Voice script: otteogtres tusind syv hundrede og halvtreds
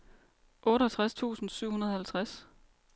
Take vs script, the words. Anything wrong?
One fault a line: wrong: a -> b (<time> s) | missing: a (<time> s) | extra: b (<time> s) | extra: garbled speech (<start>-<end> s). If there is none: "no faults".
no faults